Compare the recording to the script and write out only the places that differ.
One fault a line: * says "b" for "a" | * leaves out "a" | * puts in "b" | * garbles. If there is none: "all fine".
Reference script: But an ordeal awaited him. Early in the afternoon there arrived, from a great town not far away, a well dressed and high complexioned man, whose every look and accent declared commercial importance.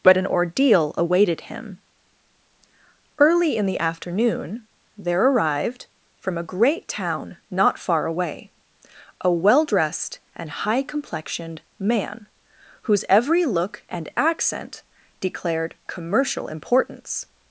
all fine